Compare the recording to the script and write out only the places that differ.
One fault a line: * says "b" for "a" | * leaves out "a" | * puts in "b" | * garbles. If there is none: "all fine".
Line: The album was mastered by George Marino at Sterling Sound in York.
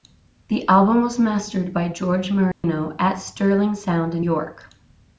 all fine